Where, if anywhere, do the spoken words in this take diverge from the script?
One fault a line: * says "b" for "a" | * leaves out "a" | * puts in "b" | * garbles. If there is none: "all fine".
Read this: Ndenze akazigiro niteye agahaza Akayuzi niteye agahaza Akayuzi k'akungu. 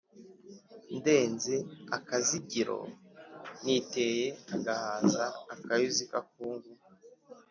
* leaves out "niteye agahaza Akayuzi"